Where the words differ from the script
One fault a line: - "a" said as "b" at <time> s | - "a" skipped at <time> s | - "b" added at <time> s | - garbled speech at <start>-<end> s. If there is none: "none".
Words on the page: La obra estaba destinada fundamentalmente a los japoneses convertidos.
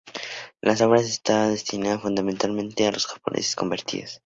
none